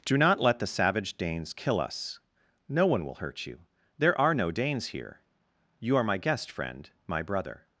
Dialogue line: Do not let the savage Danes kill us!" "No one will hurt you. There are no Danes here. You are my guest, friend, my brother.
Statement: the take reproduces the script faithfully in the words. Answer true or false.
true